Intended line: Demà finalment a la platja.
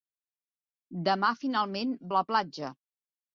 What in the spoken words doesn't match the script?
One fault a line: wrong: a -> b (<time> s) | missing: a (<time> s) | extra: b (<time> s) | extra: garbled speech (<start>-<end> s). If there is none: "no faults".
no faults